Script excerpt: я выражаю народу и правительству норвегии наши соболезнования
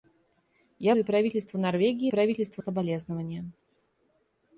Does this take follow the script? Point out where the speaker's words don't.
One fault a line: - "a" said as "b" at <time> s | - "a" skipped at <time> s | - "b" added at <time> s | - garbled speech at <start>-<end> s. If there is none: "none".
- "выражаю народу" skipped at 0.9 s
- "наши" said as "правительству" at 2.1 s